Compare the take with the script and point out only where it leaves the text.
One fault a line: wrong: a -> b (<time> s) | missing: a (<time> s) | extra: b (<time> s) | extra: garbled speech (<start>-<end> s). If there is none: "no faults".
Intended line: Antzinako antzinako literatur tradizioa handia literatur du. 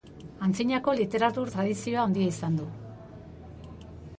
missing: antzinako (0.9 s)
wrong: literatur -> izan (2.4 s)